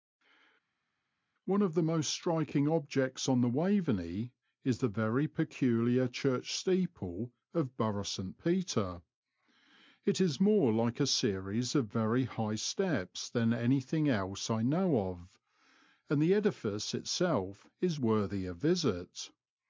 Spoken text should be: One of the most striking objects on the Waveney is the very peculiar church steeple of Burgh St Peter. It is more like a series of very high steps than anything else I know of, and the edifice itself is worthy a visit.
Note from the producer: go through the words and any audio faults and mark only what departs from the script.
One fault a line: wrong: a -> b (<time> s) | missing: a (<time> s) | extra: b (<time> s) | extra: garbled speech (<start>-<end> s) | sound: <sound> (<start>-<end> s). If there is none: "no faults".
no faults